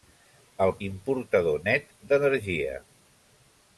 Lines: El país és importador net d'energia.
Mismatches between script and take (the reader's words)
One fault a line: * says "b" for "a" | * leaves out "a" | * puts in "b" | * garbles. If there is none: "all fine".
* leaves out "país és"